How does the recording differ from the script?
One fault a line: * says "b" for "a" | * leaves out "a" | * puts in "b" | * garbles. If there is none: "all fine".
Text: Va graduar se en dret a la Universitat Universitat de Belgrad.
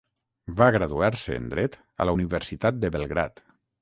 * leaves out "Universitat"